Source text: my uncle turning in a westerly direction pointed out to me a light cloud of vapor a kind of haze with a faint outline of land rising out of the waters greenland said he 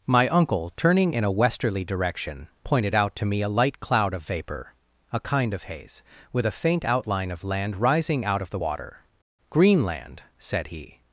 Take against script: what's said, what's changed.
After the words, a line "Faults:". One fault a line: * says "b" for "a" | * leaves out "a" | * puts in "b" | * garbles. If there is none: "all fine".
my uncle turning in a westerly direction pointed out to me a light cloud of vapor a kind of haze with a faint outline of land rising out of the water greenland said he
Faults:
* says "water" for "waters"